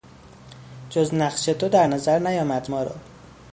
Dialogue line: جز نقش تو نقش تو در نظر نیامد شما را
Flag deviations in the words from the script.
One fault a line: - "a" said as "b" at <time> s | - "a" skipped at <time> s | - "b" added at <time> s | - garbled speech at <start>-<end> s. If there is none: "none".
- "نقش تو" skipped at 1.7 s
- "شما" said as "ما" at 2.7 s